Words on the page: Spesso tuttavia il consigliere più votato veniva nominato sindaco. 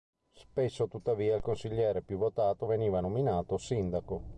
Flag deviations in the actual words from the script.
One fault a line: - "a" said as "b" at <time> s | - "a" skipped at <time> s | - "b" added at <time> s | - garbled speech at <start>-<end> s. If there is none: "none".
none